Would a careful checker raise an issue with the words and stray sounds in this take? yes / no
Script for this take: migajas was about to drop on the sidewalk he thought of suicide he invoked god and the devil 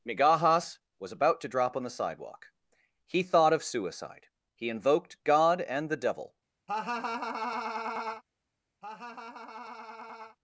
yes